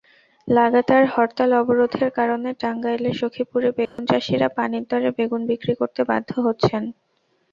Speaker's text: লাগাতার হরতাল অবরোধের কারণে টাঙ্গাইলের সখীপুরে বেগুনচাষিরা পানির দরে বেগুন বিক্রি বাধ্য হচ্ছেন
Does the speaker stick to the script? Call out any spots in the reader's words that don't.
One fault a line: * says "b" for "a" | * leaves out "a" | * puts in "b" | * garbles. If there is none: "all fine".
* puts in "করতে"